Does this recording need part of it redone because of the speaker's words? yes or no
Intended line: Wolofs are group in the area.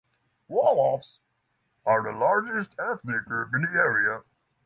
yes